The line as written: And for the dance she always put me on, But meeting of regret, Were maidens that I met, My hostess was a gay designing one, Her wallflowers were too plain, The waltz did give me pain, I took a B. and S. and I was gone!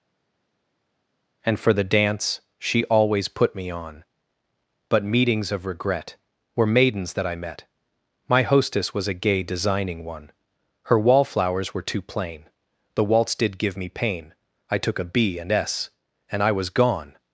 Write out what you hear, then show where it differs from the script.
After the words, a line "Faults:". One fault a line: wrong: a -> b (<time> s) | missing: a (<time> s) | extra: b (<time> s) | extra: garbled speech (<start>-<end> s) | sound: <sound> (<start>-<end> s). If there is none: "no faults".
And for the dance she always put me on, But meetings of regret, Were maidens that I met, My hostess was a gay designing one, Her wallflowers were too plain, The waltz did give me pain, I took a B. and S. and I was gone!
Faults:
wrong: meeting -> meetings (5.0 s)